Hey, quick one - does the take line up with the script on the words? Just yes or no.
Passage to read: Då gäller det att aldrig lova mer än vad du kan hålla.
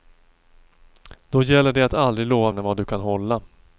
no